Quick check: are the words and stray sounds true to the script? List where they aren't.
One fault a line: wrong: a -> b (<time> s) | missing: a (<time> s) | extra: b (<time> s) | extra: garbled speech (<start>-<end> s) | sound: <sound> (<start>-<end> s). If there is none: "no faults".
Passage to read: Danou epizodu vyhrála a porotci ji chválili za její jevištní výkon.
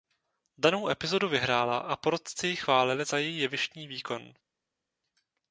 no faults